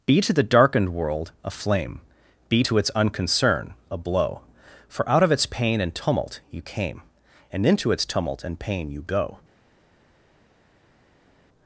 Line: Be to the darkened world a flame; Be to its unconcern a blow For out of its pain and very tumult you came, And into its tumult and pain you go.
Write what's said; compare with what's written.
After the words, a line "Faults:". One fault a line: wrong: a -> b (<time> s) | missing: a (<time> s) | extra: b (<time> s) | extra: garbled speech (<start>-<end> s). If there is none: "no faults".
Be to the darkened world a flame; Be to its unconcern a blow For out of its pain and tumult you came, And into its tumult and pain you go.
Faults:
missing: very (5.9 s)